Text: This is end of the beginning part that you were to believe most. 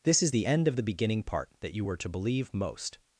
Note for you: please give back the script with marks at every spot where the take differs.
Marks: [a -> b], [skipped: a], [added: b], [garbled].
This is [added: the] end of the beginning part that you were to believe most.